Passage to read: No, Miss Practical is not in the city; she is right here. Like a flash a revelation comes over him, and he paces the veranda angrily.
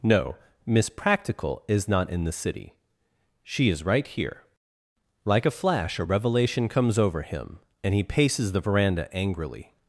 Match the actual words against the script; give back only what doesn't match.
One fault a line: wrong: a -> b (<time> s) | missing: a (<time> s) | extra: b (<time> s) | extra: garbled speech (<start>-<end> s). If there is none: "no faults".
no faults